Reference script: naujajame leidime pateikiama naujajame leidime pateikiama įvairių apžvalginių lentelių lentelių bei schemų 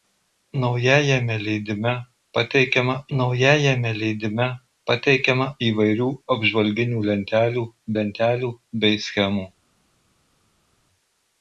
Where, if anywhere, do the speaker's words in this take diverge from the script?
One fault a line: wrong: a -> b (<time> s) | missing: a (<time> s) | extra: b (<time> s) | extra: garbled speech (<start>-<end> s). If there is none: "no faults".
no faults